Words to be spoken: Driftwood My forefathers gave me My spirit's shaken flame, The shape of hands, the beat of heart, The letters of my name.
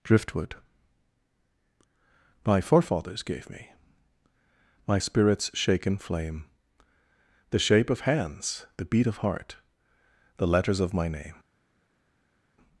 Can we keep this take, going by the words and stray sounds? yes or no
yes